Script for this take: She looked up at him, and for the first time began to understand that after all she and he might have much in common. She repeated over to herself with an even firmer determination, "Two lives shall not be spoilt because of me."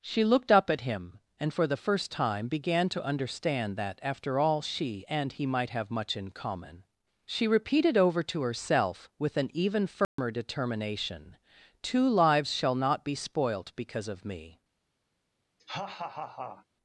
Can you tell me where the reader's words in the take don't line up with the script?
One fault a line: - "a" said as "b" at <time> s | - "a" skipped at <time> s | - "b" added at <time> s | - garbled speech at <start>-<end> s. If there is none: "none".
none